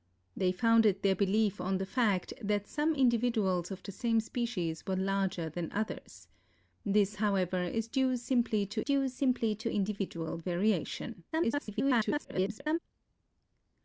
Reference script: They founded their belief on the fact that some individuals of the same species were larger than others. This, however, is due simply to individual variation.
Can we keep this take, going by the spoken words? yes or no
no